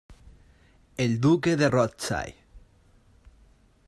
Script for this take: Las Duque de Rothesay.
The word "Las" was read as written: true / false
false